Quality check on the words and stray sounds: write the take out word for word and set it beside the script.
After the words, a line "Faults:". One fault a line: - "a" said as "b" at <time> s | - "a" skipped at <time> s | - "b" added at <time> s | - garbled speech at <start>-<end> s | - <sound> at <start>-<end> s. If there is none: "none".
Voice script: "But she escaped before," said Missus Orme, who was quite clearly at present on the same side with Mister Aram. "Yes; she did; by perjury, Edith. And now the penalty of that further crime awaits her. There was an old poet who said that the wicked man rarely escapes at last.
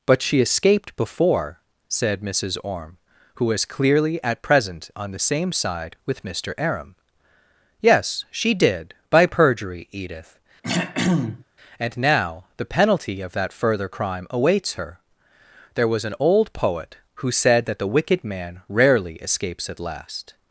"But she escaped before," said Missus Orme, who was clearly at present on the same side with Mister Aram. "Yes; she did; by perjury, Edith. And now the penalty of that further crime awaits her. There was an old poet who said that the wicked man rarely escapes at last.
Faults:
- "quite" skipped at 3.6 s
- throat clearing at 10.6-11.4 s